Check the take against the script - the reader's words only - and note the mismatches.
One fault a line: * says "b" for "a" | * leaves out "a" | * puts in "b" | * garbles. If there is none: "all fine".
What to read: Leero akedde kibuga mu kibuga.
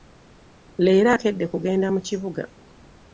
* says "kugenda" for "kibuga"